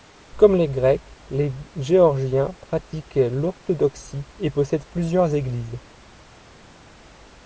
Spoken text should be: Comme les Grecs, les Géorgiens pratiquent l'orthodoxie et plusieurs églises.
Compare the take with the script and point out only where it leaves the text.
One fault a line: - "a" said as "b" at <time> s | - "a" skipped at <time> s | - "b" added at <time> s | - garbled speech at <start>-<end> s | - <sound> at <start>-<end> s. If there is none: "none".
- "possèdent" added at 4.5 s